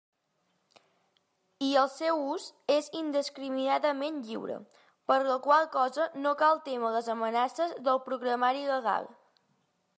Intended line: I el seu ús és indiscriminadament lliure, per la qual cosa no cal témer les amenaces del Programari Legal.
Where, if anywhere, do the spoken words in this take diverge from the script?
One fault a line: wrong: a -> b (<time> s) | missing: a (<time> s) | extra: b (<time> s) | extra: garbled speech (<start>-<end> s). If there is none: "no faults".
no faults